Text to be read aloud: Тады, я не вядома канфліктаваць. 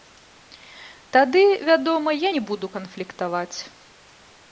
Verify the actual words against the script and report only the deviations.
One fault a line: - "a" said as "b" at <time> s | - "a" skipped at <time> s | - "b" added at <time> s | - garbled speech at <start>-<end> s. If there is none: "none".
- "вядома" added at 1.7 s
- "вядома" said as "буду" at 2.5 s